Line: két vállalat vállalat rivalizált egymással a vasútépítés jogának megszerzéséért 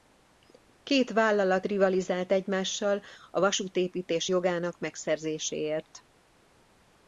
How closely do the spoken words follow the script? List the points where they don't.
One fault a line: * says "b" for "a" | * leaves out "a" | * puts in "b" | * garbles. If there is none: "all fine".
* leaves out "vállalat"